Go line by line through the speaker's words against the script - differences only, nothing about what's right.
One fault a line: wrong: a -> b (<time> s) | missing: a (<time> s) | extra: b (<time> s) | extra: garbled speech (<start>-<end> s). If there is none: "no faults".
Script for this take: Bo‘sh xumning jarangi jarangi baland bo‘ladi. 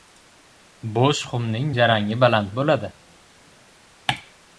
missing: jarangi (2.2 s)